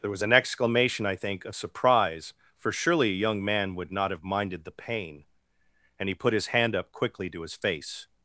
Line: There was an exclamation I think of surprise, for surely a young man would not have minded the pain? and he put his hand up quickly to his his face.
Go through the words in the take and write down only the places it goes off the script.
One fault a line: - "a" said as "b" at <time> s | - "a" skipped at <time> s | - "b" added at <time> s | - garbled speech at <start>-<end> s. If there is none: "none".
- "his" skipped at 7.6 s